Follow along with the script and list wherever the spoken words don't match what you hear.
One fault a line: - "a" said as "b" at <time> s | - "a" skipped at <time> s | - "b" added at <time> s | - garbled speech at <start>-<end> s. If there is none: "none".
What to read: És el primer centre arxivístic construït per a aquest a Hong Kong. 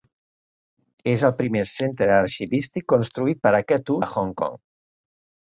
none